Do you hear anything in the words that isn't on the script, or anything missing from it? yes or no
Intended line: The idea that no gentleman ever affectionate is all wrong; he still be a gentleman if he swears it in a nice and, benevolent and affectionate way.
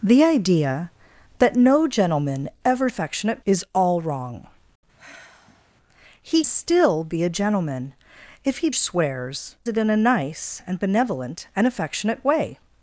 no